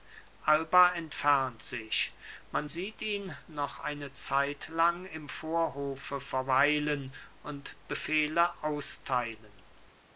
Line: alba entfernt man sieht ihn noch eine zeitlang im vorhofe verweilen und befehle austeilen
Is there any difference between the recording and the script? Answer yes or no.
yes